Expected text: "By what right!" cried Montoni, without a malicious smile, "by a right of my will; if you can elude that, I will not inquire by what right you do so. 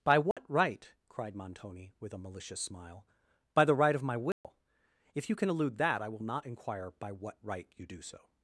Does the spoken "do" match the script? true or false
true